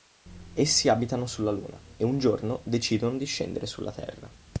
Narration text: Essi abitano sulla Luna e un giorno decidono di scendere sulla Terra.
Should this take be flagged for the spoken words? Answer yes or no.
no